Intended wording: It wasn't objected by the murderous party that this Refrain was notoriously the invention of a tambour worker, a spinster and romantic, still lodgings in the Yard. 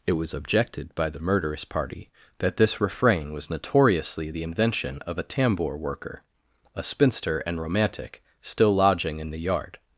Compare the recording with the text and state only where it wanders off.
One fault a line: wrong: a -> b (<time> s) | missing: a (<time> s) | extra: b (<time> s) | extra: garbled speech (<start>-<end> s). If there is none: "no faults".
wrong: wasn't -> was (0.1 s)
wrong: lodgings -> lodging (8.7 s)